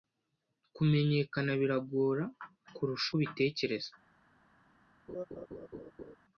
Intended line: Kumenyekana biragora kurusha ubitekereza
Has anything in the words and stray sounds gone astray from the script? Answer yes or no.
yes